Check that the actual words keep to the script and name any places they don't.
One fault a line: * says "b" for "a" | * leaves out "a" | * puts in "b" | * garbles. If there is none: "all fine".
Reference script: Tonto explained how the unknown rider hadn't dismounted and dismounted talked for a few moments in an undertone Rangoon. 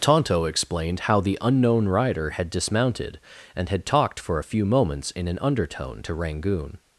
* says "had" for "hadn't"
* says "had" for "dismounted"
* puts in "to"